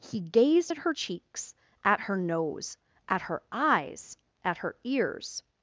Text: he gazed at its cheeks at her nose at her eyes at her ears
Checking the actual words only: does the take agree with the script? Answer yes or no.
no